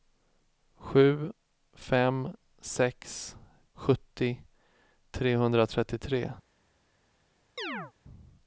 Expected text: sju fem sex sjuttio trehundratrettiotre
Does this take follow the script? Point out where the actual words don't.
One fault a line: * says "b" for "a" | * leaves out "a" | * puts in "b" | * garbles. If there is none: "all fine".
all fine